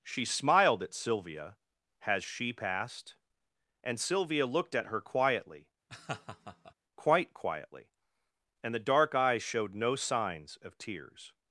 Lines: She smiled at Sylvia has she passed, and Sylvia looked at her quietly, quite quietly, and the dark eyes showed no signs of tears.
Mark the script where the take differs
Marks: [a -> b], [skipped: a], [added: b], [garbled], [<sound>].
She smiled at Sylvia has she passed, and Sylvia looked at her quietly, [laugh] quite quietly, and the dark eyes showed no signs of tears.